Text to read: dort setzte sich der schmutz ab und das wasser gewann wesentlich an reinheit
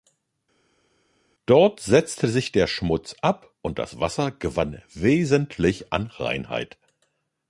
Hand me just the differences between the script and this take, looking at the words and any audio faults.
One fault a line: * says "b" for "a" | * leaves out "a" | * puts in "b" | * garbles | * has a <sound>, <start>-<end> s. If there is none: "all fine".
all fine